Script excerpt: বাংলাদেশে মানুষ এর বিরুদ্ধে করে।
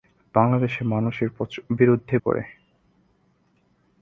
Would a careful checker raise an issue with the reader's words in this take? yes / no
no